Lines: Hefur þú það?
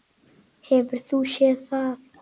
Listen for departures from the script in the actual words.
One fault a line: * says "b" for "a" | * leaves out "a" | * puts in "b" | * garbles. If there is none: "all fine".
* puts in "séð"